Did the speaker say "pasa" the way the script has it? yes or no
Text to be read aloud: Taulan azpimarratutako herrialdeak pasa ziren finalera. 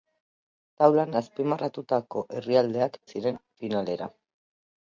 no